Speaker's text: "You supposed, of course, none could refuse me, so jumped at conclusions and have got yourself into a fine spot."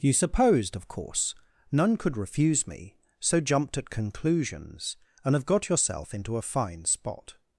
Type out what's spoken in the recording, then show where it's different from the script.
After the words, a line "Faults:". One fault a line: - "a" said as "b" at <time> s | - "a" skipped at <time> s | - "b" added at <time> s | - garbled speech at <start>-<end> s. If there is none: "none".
"You supposed, of course, none could refuse me, so jumped at conclusions and have got yourself into a fine spot."
Faults:
none